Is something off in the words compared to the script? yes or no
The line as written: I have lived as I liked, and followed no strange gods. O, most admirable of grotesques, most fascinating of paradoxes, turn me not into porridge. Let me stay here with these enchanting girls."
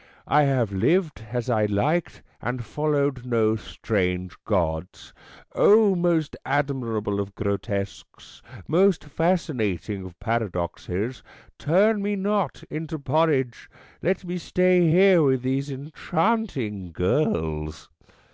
no